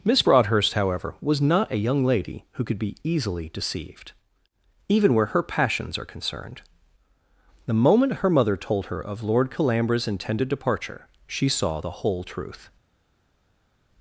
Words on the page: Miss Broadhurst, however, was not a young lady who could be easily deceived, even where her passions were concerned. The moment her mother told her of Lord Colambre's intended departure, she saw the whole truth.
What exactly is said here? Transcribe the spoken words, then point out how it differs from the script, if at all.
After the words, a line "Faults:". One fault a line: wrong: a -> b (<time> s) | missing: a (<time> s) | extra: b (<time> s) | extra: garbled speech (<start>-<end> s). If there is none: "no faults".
Miss Broadhurst, however, was not a young lady who could be easily deceived, even where her passions are concerned. The moment her mother told her of Lord Colambre's intended departure, she saw the whole truth.
Faults:
wrong: were -> are (6.0 s)